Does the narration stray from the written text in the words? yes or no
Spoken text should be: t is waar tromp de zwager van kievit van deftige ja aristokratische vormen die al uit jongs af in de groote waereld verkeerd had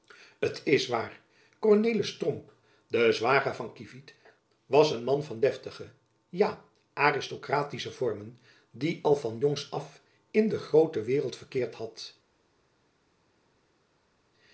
yes